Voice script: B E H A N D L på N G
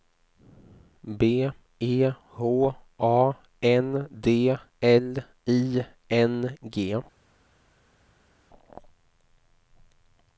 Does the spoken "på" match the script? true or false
false